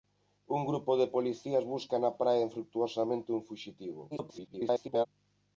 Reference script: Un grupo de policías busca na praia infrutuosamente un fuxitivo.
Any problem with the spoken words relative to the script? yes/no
yes